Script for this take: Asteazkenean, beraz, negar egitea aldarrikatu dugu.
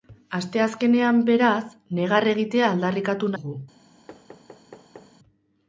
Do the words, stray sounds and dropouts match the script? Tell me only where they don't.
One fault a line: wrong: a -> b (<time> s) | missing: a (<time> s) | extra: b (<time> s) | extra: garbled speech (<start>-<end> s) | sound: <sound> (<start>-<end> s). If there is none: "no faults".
sound: thud (4.1-5.2 s)